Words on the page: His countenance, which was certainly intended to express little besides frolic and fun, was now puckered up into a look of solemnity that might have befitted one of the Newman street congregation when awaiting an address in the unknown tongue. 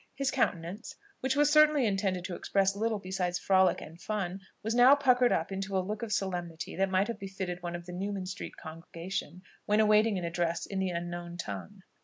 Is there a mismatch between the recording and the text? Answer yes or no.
no